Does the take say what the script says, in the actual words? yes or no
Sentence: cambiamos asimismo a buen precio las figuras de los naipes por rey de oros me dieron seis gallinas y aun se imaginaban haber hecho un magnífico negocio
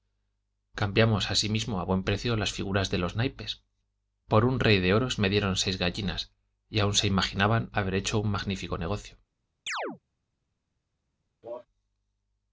no